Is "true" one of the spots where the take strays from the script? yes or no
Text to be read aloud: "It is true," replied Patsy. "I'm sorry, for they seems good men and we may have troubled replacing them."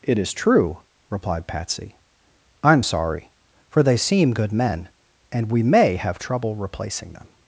no